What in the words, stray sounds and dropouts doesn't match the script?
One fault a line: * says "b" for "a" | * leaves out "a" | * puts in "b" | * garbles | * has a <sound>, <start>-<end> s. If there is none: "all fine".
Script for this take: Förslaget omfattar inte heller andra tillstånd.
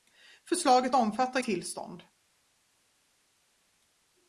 * leaves out "inte heller andra"